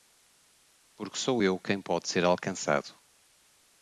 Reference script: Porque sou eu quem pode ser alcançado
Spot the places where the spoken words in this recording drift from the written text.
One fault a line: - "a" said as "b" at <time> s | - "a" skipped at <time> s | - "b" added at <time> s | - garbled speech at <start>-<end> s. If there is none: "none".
none